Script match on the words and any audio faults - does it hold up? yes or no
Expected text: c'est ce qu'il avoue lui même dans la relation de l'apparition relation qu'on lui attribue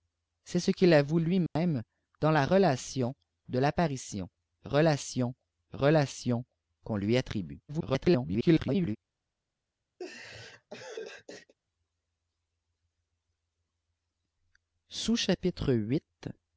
no